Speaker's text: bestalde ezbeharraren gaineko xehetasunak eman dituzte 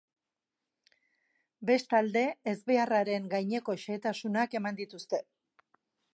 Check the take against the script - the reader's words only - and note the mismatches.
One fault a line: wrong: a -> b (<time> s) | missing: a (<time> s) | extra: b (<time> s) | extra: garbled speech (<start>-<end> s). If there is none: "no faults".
no faults